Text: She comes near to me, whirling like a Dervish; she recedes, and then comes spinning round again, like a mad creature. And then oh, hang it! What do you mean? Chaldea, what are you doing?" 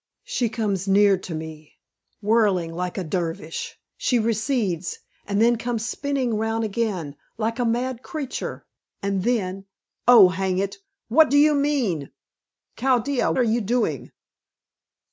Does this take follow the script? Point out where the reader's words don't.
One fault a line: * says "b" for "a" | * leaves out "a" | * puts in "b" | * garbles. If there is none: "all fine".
* leaves out "what"